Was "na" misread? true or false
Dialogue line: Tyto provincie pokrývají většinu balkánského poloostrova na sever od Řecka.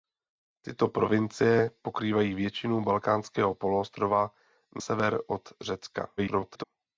true